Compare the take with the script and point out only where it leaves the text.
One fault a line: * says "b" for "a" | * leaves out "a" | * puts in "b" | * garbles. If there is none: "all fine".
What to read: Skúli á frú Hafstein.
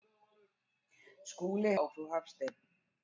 all fine